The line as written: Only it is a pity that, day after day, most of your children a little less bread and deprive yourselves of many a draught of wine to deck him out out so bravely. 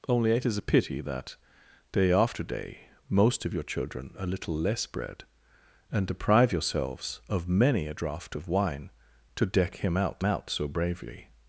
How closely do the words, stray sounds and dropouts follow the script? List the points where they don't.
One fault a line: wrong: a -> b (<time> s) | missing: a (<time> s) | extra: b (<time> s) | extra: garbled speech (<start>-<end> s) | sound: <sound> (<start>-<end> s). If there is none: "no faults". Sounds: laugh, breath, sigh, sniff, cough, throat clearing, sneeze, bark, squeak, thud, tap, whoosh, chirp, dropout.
no faults